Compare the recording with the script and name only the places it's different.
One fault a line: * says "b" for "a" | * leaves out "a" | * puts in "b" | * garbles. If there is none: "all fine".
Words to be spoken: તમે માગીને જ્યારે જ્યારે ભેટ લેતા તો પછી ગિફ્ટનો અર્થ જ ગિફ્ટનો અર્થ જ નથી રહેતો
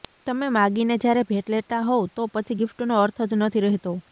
* leaves out "જ્યારે"
* puts in "હોવ"
* leaves out "ગિફ્ટનો અર્થ જ"